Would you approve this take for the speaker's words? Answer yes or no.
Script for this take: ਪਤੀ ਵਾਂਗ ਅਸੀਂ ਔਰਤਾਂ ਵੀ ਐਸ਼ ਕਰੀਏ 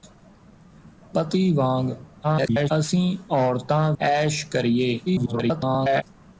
no